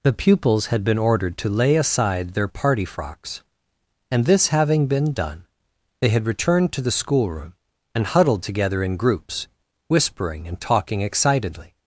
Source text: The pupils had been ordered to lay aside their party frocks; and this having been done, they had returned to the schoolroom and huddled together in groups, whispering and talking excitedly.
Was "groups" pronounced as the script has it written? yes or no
yes